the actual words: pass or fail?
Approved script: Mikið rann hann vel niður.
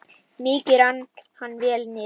pass